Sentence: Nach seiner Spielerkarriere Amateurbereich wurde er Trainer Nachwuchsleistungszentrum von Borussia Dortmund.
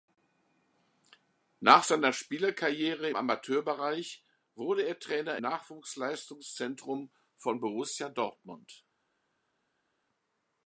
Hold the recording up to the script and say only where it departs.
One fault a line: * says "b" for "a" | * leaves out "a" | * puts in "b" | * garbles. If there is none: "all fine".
all fine